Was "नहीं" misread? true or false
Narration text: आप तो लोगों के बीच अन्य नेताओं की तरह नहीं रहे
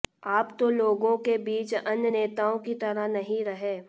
false